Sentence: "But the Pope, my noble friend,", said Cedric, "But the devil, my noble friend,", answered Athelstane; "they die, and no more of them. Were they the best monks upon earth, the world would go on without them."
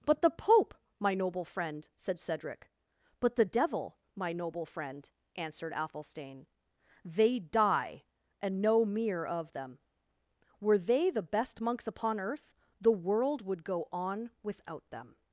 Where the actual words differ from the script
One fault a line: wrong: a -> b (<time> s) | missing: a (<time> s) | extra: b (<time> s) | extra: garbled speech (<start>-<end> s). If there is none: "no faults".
wrong: more -> mere (8.8 s)